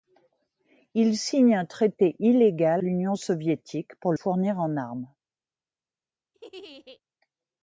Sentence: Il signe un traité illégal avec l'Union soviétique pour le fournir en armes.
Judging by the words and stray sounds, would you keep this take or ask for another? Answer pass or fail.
fail